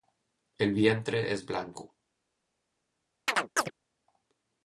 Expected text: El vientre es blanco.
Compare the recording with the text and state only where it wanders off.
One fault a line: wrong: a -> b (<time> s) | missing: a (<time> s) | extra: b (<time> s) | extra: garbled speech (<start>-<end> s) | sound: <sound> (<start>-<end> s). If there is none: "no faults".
sound: chirp (3.3-3.7 s)